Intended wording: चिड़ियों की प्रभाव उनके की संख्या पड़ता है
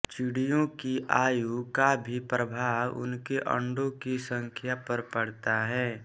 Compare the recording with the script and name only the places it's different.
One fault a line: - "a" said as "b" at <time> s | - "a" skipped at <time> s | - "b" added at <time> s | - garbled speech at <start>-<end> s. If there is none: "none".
- "आयु का भी" added at 1.1 s
- "अंडों" added at 3.5 s
- "पर" added at 4.9 s